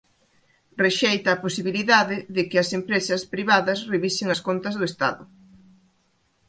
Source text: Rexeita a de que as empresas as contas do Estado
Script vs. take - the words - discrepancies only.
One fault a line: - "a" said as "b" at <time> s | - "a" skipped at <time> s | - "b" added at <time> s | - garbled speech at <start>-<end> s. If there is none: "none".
- "posibilidade" added at 1.4 s
- "privadas revisen" added at 3.3 s